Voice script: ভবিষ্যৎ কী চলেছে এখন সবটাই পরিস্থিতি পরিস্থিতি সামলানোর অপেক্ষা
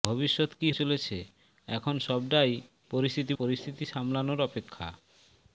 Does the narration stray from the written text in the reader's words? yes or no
no